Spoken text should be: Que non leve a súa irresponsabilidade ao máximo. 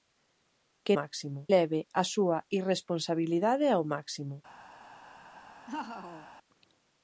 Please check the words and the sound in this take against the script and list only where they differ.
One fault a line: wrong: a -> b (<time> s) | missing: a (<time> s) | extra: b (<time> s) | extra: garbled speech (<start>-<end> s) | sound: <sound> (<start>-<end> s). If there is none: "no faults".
wrong: non -> máximo (1.0 s)
sound: laugh (5.7-6.3 s)